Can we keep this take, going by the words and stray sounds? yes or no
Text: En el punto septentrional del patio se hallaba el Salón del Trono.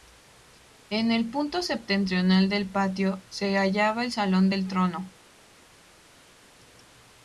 yes